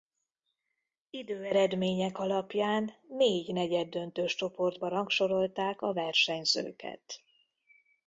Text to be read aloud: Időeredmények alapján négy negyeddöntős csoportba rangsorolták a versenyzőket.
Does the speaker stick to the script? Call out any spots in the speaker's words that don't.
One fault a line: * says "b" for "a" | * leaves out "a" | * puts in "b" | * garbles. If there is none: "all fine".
all fine